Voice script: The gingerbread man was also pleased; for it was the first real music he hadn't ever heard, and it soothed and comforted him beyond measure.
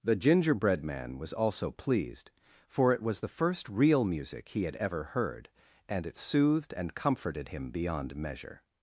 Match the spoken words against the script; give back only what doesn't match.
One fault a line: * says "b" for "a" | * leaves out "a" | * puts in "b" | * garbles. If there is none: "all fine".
* says "had" for "hadn't"